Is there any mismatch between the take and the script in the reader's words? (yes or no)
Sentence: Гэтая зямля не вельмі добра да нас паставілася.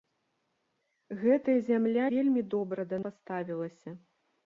yes